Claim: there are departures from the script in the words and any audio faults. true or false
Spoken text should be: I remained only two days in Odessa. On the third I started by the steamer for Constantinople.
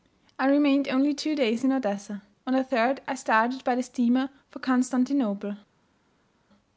false